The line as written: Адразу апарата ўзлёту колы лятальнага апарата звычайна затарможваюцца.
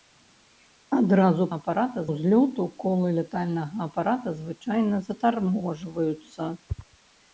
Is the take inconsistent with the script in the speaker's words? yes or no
no